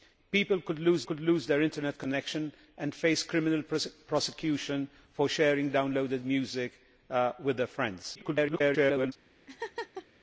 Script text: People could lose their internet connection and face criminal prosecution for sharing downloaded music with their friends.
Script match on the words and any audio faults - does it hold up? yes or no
no